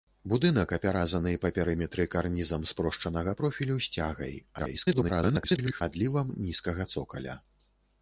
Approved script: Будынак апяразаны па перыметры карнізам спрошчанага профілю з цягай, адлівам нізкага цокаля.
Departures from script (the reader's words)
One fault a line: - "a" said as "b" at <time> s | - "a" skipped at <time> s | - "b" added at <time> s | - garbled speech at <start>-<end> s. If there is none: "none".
- garbled speech at 4.6-5.8 s